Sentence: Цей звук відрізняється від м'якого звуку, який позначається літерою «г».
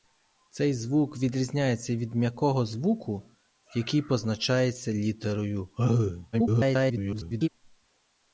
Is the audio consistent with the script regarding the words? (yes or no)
no